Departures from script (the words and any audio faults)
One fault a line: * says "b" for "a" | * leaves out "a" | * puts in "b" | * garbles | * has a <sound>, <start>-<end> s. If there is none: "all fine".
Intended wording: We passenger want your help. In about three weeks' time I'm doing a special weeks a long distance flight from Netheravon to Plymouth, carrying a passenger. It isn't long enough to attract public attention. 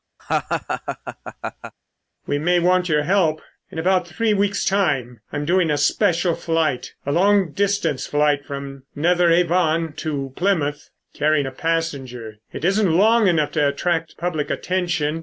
* has a laugh, 0.2-1.7 s
* says "may" for "passenger"
* says "flight" for "weeks"